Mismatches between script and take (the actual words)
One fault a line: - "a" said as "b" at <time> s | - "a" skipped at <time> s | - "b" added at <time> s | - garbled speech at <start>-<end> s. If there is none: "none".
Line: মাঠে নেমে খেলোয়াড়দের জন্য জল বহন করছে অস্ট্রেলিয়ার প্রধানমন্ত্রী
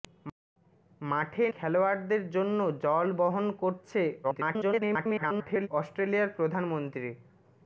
- "নেমে" skipped at 1.4 s
- garbled speech at 4.2-5.7 s